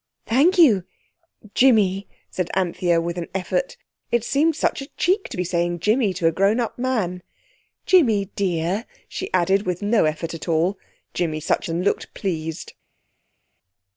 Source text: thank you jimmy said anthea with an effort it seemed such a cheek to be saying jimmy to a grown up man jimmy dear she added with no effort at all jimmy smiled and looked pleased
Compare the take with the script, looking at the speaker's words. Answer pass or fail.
fail